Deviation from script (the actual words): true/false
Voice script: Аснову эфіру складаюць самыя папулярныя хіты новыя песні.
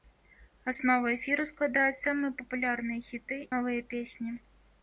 false